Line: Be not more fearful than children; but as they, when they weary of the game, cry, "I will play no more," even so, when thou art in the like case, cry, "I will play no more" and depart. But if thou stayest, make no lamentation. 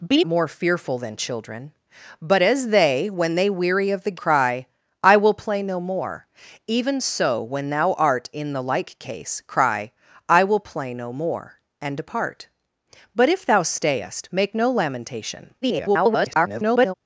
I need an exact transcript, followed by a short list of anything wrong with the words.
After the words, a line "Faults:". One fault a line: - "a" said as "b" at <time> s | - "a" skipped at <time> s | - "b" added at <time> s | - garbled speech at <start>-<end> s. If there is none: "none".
Be more fearful than children; but as they, when they weary of the cry, "I will play no more," even so, when thou art in the like case, cry, "I will play no more" and depart. But if thou stayest, make no lamentation. [garbled]
Faults:
- "not" skipped at 0.2 s
- "game" skipped at 4.2 s
- garbled speech at 15.6-16.9 s